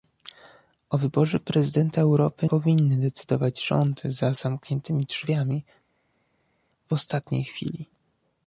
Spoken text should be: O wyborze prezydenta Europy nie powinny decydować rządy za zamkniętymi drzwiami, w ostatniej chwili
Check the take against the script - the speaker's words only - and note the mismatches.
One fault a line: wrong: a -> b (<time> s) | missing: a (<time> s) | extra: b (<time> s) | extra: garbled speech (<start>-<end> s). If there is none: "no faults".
missing: nie (2.5 s)